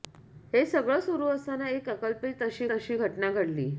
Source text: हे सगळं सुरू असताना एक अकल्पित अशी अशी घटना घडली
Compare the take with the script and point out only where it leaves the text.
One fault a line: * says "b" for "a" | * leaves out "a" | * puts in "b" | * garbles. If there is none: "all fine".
all fine